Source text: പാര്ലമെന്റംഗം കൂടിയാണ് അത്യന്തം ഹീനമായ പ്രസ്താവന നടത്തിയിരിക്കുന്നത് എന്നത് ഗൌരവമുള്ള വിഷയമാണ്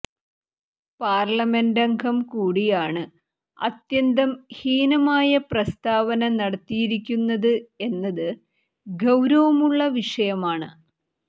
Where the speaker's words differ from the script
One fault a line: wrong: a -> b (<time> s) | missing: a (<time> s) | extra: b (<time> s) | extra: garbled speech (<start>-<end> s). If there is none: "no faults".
no faults